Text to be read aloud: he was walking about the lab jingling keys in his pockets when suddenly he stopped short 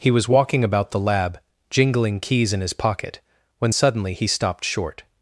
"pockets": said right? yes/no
no